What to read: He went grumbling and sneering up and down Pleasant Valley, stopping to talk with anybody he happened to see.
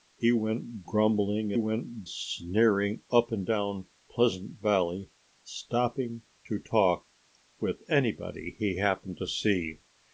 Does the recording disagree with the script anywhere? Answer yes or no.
yes